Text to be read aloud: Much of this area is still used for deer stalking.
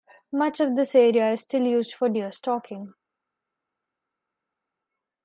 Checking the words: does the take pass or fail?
pass